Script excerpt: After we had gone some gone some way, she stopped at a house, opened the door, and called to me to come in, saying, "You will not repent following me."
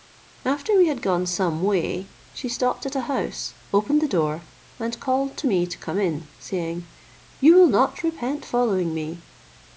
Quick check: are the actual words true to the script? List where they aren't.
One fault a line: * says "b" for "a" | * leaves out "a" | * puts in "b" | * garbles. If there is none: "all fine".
* leaves out "gone some"